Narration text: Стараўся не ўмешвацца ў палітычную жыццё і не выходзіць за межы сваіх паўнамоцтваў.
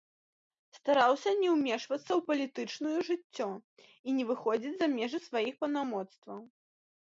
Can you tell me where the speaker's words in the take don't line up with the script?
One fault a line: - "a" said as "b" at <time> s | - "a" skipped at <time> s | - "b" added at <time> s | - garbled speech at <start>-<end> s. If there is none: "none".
none